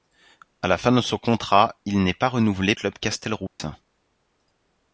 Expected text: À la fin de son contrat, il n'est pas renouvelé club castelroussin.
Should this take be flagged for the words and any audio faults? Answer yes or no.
yes